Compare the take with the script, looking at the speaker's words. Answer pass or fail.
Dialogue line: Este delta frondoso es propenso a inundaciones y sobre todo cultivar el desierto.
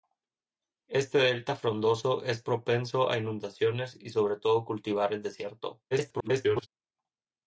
fail